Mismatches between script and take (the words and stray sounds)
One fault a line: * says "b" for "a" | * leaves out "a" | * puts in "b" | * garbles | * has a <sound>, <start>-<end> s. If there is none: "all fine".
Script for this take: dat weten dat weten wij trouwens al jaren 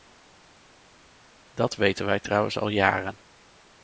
* leaves out "dat weten"